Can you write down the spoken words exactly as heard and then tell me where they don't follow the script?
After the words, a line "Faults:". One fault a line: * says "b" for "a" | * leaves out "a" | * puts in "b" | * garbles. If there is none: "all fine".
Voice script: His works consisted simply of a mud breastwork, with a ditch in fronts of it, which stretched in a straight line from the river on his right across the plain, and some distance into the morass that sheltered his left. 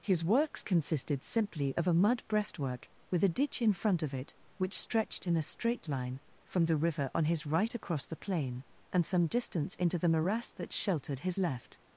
His works consisted simply of a mud breastwork, with a ditch in front of it, which stretched in a straight line from the river on his right across the plain, and some distance into the morass that sheltered his left.
Faults:
* says "front" for "fronts"